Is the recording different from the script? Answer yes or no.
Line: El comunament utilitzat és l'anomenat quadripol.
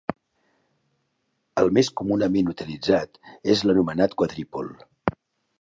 yes